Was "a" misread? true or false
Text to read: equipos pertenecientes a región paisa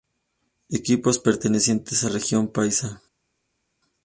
false